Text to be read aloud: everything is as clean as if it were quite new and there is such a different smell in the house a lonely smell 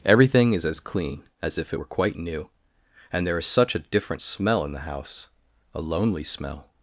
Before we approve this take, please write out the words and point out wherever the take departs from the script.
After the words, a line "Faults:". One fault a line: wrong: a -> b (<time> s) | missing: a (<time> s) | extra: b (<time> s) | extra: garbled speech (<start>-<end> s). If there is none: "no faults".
everything is as clean as if it were quite new and there is such a different smell in the house a lonely smell
Faults:
no faults